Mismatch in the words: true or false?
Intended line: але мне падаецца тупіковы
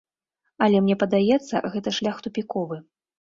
true